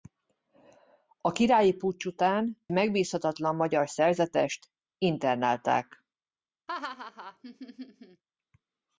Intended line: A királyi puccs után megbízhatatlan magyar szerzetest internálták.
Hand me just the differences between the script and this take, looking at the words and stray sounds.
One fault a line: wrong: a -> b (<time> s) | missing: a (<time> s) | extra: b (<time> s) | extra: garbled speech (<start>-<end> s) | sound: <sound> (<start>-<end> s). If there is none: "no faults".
sound: laugh (6.7-8.2 s)